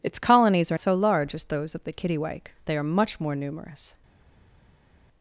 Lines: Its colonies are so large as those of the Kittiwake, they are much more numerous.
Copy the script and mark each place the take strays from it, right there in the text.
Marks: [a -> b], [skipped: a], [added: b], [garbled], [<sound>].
Its colonies are so large as those of the Kittiwake, they are much more numerous.